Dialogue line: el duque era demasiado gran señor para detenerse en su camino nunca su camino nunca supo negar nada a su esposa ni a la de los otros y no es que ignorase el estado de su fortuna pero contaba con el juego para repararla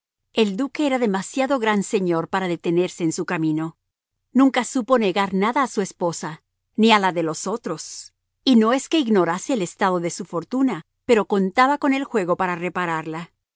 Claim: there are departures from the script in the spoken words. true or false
true